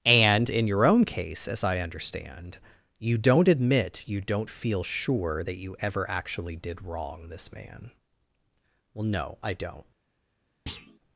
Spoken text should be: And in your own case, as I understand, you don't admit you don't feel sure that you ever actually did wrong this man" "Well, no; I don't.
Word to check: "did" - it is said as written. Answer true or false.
true